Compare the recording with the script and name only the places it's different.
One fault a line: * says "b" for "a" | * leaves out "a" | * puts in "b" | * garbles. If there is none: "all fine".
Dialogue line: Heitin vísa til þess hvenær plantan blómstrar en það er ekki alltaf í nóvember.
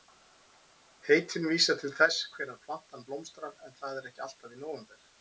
all fine